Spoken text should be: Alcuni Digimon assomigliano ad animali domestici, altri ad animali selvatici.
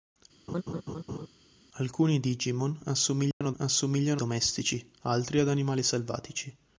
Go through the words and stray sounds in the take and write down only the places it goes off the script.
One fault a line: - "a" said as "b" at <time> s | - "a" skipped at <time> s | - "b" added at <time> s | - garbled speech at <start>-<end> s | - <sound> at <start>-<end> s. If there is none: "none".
- laugh at 0.5-1.3 s
- dropout at 3.3-3.4 s
- "animali" said as "assomigliano" at 3.6 s